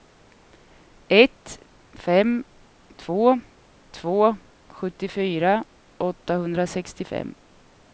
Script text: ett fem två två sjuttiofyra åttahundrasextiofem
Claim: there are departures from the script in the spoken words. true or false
false